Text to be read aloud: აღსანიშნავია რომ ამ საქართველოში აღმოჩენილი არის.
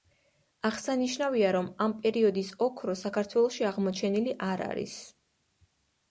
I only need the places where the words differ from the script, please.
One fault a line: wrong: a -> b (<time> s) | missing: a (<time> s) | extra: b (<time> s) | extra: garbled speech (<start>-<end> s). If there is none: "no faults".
extra: პერიოდის ოქრო (2.0 s)
extra: არ (4.5 s)